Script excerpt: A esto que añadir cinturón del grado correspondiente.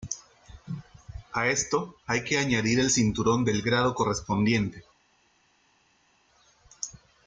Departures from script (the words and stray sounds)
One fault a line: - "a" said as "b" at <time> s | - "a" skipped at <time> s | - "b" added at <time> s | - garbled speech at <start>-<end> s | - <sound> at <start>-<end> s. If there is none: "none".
- "hay" added at 2.1 s
- "el" added at 2.8 s